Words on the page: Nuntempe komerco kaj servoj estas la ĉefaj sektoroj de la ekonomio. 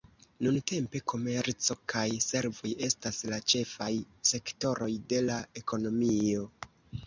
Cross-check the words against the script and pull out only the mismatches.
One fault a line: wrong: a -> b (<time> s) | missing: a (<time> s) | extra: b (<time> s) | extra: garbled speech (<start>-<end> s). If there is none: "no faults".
no faults